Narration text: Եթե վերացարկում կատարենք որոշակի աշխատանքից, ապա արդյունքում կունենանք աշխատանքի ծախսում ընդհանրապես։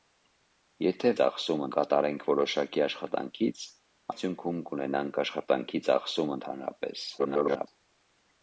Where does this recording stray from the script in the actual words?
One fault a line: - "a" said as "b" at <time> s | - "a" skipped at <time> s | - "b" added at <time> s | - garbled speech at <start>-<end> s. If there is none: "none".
- "վերացարկում" said as "ծախսում" at 1.2 s
- "ապա" skipped at 3.6 s
- garbled speech at 7.2-7.7 s